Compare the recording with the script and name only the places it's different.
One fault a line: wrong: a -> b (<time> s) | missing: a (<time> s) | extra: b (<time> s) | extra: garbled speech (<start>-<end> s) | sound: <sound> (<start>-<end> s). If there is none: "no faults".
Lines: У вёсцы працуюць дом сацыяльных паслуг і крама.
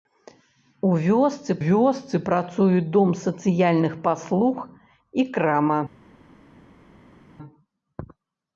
extra: вёсцы (1.6 s)